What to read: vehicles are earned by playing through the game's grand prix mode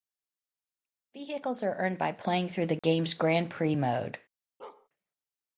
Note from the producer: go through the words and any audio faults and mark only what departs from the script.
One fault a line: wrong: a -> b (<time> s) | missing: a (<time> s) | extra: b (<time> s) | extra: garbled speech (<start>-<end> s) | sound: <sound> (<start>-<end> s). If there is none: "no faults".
sound: dropout (2.8-2.8 s)
sound: bark (4.6-4.9 s)